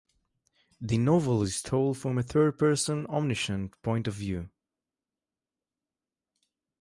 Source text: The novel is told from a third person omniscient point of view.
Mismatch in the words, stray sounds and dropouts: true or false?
false